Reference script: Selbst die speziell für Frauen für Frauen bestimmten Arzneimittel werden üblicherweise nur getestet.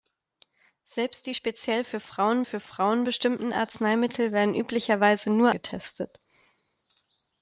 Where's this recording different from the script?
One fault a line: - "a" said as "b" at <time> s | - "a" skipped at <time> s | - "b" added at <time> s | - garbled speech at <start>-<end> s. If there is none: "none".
none